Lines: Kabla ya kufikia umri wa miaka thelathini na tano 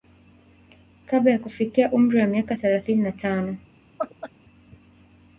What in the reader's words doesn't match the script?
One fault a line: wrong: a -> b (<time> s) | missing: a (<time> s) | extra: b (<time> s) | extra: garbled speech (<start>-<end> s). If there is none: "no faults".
no faults